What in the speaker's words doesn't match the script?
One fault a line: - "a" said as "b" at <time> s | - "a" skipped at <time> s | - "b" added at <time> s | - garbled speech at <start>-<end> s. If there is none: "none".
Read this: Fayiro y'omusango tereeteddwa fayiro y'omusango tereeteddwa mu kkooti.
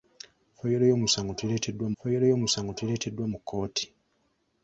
none